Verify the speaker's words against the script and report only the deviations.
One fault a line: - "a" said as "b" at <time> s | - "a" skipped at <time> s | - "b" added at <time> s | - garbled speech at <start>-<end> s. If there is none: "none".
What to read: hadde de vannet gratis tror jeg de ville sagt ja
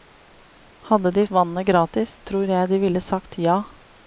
none